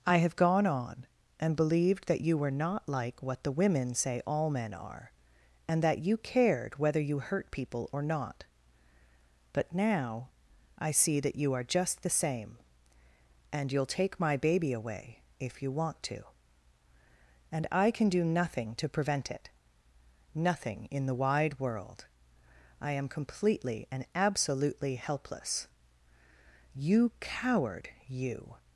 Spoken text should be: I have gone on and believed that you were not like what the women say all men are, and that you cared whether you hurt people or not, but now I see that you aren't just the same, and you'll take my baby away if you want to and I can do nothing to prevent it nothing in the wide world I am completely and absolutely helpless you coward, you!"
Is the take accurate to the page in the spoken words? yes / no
no